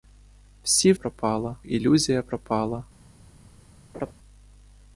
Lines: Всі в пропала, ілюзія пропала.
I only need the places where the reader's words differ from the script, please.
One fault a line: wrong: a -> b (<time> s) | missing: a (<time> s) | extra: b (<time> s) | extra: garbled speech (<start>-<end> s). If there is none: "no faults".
no faults